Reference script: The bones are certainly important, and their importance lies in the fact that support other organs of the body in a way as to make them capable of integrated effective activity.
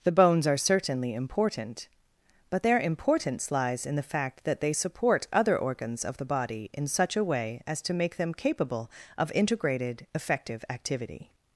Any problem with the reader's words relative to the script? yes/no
yes